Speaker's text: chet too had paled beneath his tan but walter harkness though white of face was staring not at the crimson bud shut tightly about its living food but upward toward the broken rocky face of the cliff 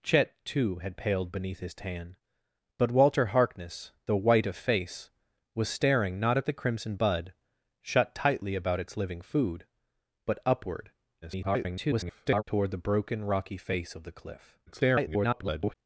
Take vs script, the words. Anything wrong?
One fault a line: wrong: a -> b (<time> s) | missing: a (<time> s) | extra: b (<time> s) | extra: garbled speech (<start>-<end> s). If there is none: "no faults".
extra: garbled speech (11.2-12.4 s)
extra: garbled speech (14.7-15.7 s)